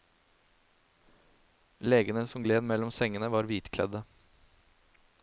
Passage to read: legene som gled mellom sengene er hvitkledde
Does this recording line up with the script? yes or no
no